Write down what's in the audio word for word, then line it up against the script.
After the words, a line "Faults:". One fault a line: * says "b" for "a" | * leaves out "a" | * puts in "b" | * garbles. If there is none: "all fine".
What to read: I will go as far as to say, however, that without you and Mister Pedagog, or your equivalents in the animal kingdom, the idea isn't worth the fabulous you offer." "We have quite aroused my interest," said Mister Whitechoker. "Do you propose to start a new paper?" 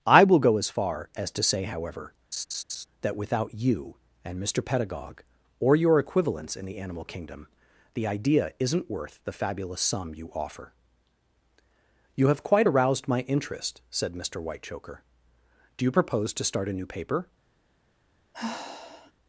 I will go as far as to say, however, that without you and Mister Pedagog, or your equivalents in the animal kingdom, the idea isn't worth the fabulous sum you offer." "You have quite aroused my interest," said Mister Whitechoker. "Do you propose to start a new paper?"
Faults:
* puts in "sum"
* says "You" for "We"